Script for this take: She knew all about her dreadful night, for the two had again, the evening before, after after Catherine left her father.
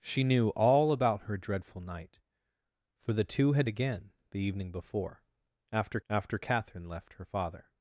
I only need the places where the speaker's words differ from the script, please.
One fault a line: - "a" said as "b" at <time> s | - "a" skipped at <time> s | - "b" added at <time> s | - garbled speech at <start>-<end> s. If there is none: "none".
none